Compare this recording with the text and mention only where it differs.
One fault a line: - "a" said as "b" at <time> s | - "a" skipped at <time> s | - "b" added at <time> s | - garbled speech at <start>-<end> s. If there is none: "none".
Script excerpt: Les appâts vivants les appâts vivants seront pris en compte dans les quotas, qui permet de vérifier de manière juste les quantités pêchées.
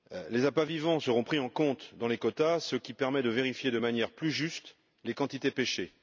- "les appâts vivants" skipped at 1.0 s
- "ce" added at 2.6 s
- "plus" added at 4.1 s